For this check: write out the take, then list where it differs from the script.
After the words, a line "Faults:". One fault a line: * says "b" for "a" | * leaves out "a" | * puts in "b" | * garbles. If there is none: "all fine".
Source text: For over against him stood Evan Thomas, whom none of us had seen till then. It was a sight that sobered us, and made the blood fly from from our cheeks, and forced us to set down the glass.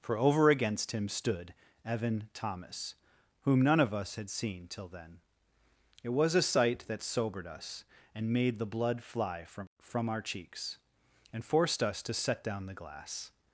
For over against him stood Evan Thomas, whom none of us had seen till then. It was a sight that sobered us, and made the blood fly from from our cheeks, and forced us to set down the glass.
Faults:
all fine